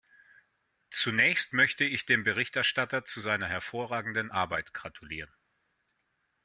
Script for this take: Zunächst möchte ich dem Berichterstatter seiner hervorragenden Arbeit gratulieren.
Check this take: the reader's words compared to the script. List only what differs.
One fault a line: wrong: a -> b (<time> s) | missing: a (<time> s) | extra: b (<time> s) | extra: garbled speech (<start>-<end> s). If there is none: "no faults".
extra: zu (3.0 s)